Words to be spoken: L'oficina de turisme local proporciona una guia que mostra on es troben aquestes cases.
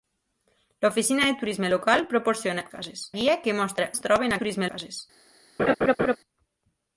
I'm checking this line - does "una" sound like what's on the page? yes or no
no